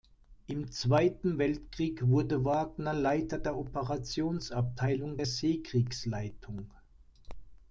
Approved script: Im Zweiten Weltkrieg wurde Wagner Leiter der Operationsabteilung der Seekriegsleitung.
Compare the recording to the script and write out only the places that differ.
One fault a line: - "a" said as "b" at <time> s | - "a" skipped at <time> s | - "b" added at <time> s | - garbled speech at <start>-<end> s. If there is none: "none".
none